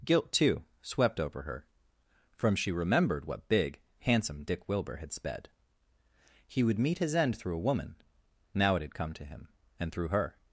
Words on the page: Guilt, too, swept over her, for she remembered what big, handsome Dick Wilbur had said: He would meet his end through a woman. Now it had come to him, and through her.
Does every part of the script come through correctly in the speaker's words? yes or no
no